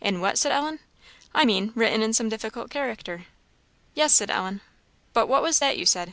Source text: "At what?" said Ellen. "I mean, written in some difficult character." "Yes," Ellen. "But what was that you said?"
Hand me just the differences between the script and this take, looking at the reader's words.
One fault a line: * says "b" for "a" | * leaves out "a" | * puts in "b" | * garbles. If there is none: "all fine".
* says "In" for "At"
* puts in "said"